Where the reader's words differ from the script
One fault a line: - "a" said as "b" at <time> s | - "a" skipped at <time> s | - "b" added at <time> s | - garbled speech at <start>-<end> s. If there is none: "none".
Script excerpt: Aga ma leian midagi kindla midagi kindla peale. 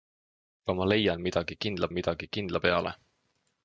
none